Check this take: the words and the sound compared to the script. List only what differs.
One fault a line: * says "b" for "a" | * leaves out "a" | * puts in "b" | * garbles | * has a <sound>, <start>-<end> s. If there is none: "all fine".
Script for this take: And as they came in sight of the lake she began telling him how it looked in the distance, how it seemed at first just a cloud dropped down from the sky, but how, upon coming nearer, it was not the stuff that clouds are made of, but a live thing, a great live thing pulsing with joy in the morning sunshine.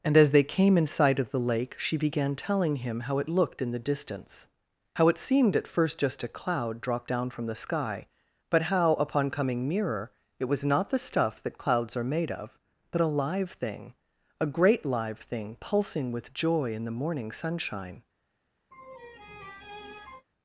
* has a laugh, 18.7-20.3 s